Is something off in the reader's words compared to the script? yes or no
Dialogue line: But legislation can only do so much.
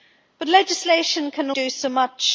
yes